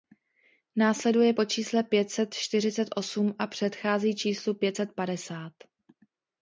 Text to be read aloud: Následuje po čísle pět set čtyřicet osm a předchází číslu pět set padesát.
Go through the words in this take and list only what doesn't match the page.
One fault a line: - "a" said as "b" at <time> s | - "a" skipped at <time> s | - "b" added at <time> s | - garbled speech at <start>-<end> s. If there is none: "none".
none